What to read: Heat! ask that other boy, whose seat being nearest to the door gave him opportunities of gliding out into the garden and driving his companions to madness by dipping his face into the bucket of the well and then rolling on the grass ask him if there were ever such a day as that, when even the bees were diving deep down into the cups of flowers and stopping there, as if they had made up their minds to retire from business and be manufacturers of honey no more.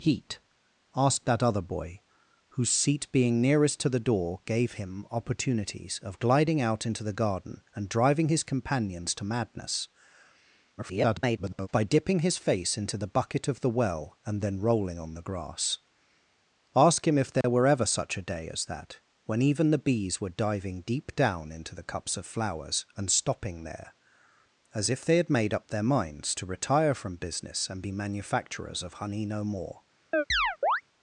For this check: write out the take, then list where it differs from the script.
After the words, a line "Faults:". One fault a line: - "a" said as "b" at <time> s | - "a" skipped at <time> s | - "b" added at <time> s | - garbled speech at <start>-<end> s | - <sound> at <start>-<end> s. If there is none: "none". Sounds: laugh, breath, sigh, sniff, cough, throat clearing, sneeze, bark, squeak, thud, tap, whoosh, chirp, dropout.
Heat! ask that other boy, whose seat being nearest to the door gave him opportunities of gliding out into the garden and driving his companions to madness [garbled] by dipping his face into the bucket of the well and then rolling on the grass ask him if there were ever such a day as that, when even the bees were diving deep down into the cups of flowers and stopping there, as if they had made up their minds to retire from business and be manufacturers of honey no more.
Faults:
- garbled speech at 10.8-11.7 s
- dropout at 17.4-17.4 s
- chirp at 30.1-30.8 s